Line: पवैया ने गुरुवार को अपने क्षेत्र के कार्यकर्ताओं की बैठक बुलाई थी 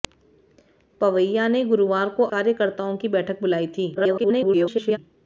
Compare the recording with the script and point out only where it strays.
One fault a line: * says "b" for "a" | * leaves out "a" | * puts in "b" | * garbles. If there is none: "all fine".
* leaves out "अपने क्षेत्र के"
* garbles